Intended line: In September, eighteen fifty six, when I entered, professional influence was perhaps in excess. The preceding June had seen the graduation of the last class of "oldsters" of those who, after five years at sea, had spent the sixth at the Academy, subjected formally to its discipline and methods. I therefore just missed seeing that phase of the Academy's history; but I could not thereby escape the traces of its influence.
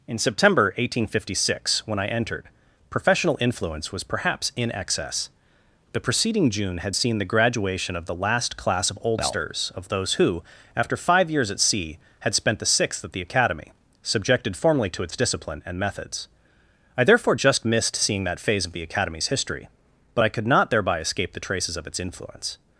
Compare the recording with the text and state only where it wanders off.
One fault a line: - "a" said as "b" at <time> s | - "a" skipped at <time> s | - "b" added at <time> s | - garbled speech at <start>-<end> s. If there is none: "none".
none